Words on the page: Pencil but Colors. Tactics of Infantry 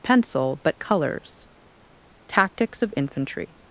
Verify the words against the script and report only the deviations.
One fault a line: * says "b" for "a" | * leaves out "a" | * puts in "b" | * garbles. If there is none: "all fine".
all fine